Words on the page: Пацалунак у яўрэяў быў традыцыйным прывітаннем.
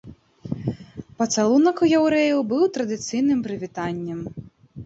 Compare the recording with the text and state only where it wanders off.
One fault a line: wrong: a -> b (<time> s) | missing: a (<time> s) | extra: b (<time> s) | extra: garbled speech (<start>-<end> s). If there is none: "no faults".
no faults